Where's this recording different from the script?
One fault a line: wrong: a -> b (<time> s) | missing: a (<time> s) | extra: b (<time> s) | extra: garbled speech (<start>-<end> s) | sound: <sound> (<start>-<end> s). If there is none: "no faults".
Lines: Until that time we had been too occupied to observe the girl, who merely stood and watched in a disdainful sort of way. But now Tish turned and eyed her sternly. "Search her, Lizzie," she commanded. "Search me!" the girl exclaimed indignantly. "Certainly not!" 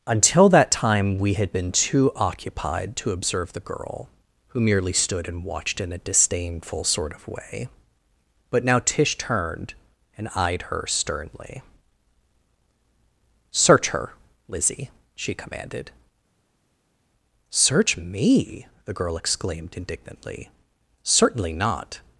no faults